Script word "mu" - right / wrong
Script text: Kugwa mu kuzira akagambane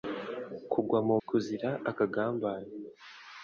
right